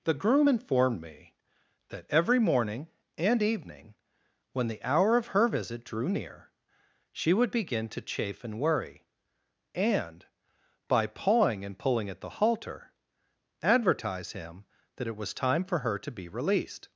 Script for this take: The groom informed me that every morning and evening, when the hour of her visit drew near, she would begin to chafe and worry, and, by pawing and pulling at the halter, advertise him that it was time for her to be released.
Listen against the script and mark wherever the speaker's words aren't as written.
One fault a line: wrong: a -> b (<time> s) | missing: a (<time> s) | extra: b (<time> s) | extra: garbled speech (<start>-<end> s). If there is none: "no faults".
no faults